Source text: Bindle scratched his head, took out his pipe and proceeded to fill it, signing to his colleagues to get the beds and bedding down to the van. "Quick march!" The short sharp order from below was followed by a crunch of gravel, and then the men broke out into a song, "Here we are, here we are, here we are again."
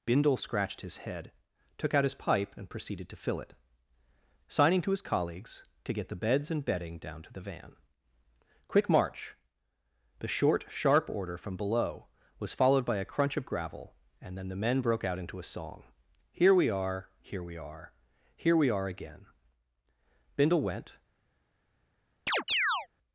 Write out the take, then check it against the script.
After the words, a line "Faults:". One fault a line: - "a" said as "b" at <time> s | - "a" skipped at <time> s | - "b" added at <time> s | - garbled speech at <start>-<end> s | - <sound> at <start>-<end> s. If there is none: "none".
Bindle scratched his head, took out his pipe and proceeded to fill it, signing to his colleagues to get the beds and bedding down to the van. "Quick march!" The short sharp order from below was followed by a crunch of gravel, and then the men broke out into a song, "Here we are, here we are, here we are again." Bindle went
Faults:
- "Bindle went" added at 20.4 s
- chirp at 22.3-22.9 s